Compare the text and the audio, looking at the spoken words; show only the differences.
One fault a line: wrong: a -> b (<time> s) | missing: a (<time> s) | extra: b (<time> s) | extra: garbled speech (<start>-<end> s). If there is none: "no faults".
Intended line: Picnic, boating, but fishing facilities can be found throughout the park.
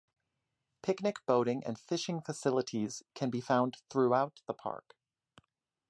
wrong: but -> and (1.6 s)